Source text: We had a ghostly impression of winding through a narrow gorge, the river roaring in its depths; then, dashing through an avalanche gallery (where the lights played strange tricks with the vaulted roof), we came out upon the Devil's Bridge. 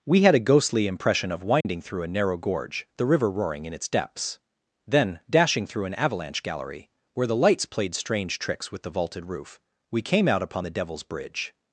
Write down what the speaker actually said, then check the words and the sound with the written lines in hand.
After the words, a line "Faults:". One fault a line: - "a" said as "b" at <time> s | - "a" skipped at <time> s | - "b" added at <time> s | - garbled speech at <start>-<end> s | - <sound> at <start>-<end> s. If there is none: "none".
We had a ghostly impression of winding through a narrow gorge, the river roaring in its depths; then, dashing through an avalanche gallery (where the lights played strange tricks with the vaulted roof), we came out upon the Devil's Bridge.
Faults:
- dropout at 1.6-1.7 s